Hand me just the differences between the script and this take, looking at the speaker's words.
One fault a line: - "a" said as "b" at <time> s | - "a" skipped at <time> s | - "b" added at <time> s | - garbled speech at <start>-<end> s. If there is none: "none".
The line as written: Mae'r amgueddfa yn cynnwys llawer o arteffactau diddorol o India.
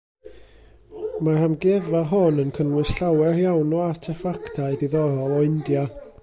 - "hon" added at 2.1 s
- "iawn" added at 3.4 s